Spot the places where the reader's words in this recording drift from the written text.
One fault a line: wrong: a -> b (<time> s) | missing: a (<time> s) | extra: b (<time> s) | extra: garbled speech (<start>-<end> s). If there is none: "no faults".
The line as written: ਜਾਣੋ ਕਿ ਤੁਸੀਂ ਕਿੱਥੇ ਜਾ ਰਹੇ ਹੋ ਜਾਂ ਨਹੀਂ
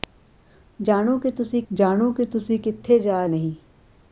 wrong: ਕਿੱਥੇ ਜਾ ਰਹੇ ਹੋ ਜਾਂ -> ਜਾਣੋ ਕਿ ਤੁਸੀਂ ਕਿੱਥੇ ਜਾ (1.7 s)